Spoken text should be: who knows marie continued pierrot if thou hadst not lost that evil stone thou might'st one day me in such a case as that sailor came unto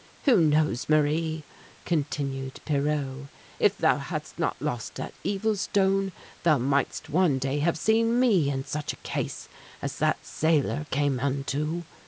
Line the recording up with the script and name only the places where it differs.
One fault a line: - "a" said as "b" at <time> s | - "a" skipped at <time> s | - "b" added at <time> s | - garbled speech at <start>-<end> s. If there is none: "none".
- "have seen" added at 7.6 s